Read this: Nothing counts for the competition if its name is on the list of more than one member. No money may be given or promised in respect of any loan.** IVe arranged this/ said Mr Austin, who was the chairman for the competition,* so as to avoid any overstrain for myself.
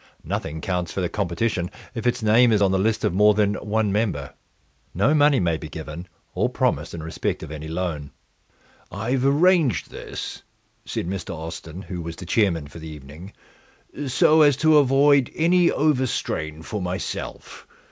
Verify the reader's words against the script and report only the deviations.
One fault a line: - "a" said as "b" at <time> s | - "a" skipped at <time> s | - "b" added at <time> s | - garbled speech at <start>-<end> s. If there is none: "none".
- "competition" said as "evening" at 12.9 s